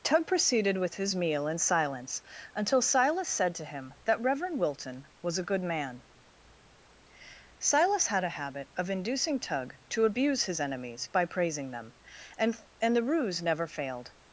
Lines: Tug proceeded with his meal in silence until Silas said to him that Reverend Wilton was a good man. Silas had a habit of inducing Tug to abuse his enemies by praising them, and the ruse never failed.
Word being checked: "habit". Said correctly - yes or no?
yes